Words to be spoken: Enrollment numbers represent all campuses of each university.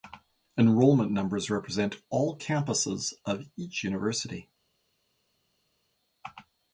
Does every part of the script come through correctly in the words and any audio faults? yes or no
yes